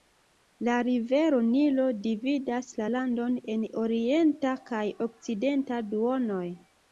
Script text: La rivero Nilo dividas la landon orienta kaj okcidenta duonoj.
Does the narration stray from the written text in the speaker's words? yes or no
yes